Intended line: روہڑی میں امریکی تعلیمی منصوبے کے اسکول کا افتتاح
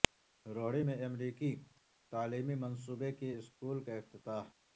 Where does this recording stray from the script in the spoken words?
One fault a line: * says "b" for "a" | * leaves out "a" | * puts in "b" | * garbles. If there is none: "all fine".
all fine